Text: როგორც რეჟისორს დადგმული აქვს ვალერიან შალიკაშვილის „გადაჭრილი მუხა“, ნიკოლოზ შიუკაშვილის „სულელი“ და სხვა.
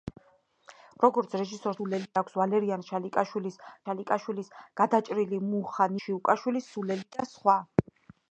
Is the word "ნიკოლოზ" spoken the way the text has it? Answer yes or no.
no